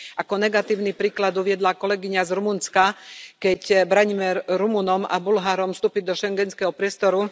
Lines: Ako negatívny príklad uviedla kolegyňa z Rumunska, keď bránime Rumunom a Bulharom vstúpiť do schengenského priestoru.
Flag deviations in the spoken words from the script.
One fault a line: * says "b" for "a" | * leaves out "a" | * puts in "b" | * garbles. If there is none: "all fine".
all fine